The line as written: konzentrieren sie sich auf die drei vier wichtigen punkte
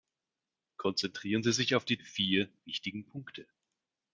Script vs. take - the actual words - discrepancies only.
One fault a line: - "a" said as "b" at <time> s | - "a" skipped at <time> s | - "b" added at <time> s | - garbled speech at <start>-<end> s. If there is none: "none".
- "drei" skipped at 2.0 s